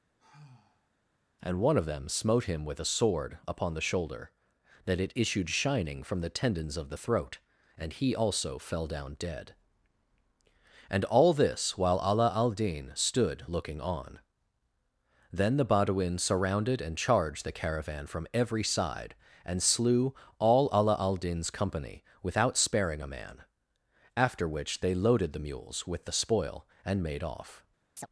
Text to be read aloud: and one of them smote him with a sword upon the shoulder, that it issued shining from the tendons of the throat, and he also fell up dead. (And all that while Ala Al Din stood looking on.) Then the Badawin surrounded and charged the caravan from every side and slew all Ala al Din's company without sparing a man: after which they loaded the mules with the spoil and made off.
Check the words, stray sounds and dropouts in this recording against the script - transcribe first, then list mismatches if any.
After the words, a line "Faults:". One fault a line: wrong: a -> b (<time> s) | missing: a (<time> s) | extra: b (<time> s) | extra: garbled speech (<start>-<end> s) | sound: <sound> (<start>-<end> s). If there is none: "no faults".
and one of them smote him with a sword upon the shoulder, that it issued shining from the tendons of the throat, and he also fell down dead. (And all this while Ala Al Din stood looking on.) Then the Badawin surrounded and charged the caravan from every side and slew all Ala al Din's company without sparing a man: after which they loaded the mules with the spoil and made off.
Faults:
sound: sigh (0.2-0.9 s)
wrong: up -> down (8.9 s)
wrong: that -> this (11.3 s)
sound: chirp (28.0-28.1 s)